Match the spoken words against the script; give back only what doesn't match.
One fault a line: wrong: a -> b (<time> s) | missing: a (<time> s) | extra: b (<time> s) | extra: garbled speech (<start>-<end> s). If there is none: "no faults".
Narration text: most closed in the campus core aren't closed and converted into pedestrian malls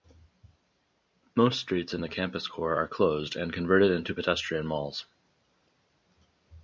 wrong: closed -> streets (1.6 s)
wrong: aren't -> are (2.7 s)